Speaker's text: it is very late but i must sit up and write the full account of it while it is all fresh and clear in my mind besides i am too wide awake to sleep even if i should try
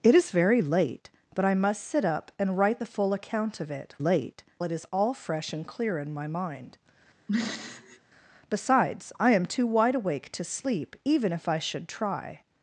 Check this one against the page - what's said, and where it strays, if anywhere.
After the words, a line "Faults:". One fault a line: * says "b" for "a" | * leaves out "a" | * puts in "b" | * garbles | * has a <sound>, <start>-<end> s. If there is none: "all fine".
it is very late but i must sit up and write the full account of it late it is all fresh and clear in my mind besides i am too wide awake to sleep even if i should try
Faults:
* says "late" for "while"
* has a throat clearing, 7.3-8.0 s